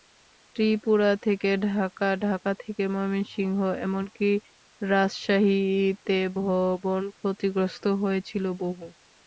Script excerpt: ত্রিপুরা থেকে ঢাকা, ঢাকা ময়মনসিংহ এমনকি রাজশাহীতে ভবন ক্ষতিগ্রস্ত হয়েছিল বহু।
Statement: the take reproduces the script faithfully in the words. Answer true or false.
false